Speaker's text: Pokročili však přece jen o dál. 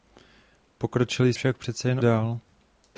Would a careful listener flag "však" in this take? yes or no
no